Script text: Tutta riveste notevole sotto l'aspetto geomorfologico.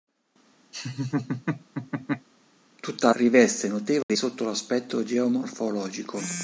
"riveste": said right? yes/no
yes